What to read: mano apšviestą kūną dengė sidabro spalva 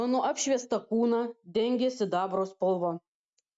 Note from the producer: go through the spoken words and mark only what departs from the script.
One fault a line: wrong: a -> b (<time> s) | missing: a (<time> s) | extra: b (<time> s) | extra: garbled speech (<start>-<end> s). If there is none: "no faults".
no faults